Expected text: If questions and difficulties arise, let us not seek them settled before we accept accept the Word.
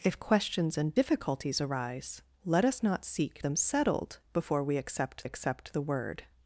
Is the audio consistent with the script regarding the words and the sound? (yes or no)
yes